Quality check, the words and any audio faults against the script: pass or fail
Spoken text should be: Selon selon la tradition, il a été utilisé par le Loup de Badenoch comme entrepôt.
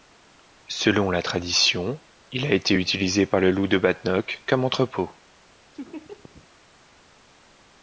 fail